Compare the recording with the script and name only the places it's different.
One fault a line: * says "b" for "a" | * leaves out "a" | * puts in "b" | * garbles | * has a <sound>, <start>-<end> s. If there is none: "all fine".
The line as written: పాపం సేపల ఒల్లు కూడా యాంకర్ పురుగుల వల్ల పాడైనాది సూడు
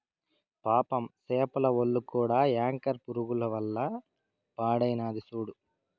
all fine